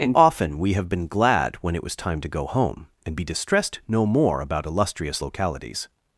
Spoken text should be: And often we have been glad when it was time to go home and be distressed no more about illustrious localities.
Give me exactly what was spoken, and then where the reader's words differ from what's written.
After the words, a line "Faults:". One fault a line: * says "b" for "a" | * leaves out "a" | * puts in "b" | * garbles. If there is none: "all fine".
And often we have been glad when it was time to go home and be distressed no more about illustrious localities.
Faults:
all fine